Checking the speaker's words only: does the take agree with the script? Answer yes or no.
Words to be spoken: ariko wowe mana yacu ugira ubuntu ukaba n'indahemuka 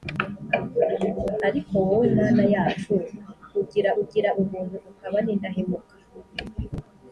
no